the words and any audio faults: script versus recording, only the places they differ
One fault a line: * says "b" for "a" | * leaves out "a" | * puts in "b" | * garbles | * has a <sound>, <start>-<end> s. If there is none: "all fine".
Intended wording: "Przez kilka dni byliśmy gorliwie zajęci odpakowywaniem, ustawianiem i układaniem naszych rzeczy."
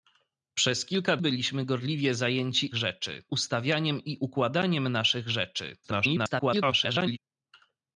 * leaves out "dni"
* says "rzeczy" for "odpakowywaniem"
* garbles